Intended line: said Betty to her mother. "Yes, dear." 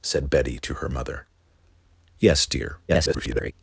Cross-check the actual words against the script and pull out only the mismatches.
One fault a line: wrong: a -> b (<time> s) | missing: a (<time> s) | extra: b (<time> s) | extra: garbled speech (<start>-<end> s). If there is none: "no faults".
extra: garbled speech (2.9-3.5 s)